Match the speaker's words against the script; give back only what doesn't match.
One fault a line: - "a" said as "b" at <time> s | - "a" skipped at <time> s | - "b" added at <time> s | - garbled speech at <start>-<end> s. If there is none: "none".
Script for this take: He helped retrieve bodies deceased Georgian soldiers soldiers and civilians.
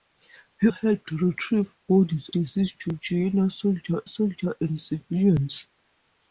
none